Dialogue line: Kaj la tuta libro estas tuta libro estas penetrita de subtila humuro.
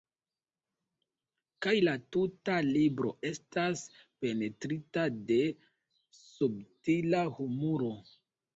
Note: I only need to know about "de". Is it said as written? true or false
true